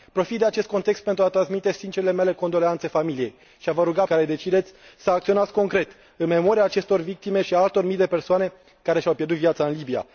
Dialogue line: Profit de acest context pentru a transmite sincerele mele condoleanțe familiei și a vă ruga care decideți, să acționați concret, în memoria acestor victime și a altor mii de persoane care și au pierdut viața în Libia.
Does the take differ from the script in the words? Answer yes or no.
no